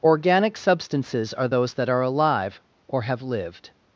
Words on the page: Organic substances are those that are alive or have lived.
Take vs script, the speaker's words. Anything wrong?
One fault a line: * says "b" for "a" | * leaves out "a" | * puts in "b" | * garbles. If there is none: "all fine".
all fine